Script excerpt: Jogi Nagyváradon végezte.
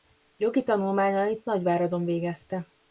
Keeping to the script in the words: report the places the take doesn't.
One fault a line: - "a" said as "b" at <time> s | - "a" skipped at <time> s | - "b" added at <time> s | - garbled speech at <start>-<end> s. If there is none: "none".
- "tanulmányait" added at 0.6 s